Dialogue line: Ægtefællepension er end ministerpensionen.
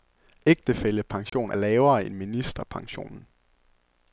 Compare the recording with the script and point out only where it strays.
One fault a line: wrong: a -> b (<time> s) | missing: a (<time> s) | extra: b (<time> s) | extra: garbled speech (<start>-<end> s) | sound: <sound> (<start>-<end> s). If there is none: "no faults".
sound: dropout (1.3-1.3 s)
extra: lavere (1.5 s)